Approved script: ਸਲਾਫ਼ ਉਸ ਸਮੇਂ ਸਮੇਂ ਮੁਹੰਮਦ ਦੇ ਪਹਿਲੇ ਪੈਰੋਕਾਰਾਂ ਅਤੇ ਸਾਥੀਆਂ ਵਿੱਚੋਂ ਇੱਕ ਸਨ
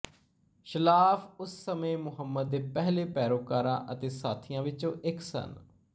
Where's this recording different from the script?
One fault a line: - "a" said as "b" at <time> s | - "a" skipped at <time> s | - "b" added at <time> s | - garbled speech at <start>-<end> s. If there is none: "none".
- "ਸਮੇਂ" skipped at 2.0 s